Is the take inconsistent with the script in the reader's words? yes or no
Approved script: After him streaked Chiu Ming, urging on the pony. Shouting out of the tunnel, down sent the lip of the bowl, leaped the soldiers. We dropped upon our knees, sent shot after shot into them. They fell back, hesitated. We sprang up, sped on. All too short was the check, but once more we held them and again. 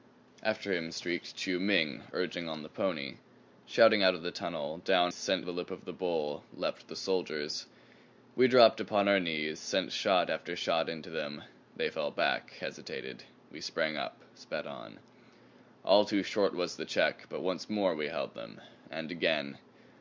no